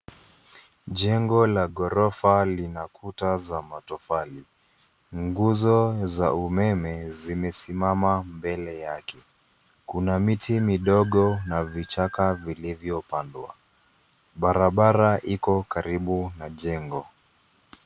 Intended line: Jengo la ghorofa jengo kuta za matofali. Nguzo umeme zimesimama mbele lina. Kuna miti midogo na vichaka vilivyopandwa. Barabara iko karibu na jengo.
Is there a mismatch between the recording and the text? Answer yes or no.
yes